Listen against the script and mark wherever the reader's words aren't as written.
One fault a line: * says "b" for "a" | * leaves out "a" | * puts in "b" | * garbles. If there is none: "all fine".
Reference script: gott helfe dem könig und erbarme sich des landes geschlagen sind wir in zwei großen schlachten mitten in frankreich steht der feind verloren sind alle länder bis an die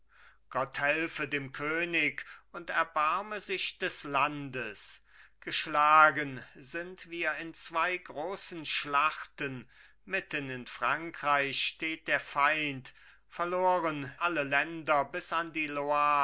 * leaves out "sind"